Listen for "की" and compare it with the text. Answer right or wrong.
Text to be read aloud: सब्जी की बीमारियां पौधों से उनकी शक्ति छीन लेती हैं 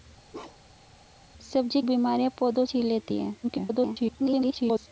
wrong